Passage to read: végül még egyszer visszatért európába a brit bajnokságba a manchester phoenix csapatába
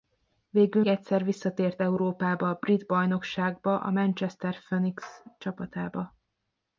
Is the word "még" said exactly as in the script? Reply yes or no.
no